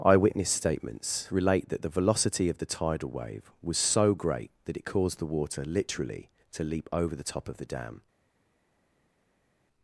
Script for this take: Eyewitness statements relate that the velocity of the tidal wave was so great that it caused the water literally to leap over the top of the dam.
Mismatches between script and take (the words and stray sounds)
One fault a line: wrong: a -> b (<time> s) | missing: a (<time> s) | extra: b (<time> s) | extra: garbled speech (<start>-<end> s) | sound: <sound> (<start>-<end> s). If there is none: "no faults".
no faults